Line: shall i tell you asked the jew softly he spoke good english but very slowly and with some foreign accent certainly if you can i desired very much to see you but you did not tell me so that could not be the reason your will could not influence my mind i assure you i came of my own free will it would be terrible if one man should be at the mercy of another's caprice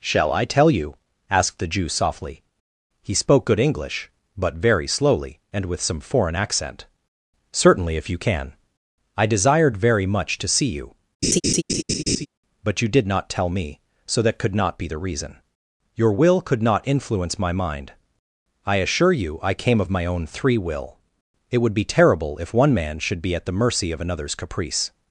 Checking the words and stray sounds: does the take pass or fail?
fail